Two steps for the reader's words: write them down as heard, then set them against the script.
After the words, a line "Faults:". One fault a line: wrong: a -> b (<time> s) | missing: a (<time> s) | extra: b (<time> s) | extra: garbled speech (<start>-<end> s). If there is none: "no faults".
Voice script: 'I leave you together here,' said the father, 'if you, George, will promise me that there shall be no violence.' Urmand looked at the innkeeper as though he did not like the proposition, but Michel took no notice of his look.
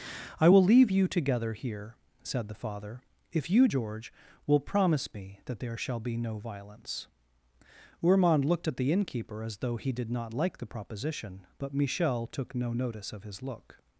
'I will leave you together here,' said the father, 'if you, George, will promise me that there shall be no violence.' Urmand looked at the innkeeper as though he did not like the proposition, but Michel took no notice of his look.
Faults:
extra: will (0.5 s)